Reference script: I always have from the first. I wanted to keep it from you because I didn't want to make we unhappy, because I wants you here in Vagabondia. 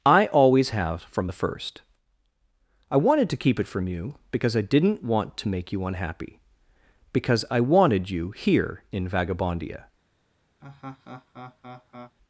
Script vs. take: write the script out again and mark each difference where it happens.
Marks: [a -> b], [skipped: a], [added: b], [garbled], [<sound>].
I always have from the first. I wanted to keep it from you because I didn't want to make [we -> you] unhappy, because I [wants -> wanted] you here in Vagabondia. [laugh]